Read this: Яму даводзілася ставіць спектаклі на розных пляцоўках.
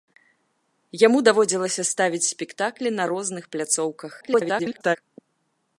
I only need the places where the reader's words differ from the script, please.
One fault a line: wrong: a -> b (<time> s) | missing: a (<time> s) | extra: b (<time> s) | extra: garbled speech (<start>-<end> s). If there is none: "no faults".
extra: garbled speech (4.2-5.0 s)